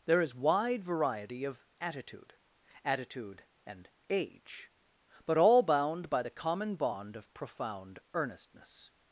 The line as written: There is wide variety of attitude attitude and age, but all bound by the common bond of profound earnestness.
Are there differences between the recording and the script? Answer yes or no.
no